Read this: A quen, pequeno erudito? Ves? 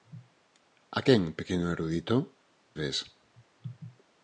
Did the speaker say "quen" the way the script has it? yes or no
yes